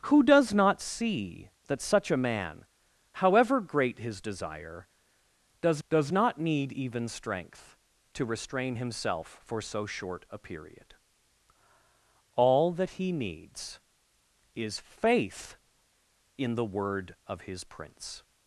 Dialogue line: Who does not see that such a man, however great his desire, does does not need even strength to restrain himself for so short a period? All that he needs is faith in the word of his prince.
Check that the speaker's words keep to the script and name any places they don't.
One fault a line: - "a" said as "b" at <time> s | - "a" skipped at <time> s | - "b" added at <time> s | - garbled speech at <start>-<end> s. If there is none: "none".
none